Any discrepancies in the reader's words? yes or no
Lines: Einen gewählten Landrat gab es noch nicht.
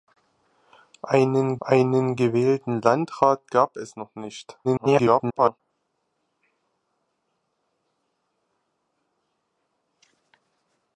yes